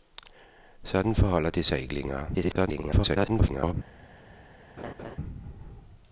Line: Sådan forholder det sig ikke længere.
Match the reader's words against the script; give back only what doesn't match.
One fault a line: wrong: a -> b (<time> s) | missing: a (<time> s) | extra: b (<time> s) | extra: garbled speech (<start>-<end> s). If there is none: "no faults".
extra: garbled speech (2.3-3.7 s)